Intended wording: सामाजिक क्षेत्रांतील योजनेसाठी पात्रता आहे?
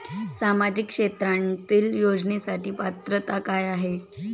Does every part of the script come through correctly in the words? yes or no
no